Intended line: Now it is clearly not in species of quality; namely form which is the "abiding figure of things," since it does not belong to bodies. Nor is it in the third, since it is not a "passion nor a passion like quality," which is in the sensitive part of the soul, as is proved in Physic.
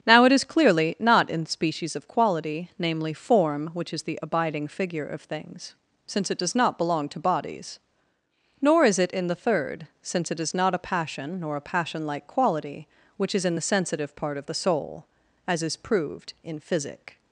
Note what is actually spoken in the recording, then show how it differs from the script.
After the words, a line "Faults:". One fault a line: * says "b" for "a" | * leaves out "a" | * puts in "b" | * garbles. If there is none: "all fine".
Now it is clearly not in species of quality; namely form which is the "abiding figure of things," since it does not belong to bodies. Nor is it in the third, since it is not a "passion nor a passion like quality," which is in the sensitive part of the soul, as is proved in Physic.
Faults:
all fine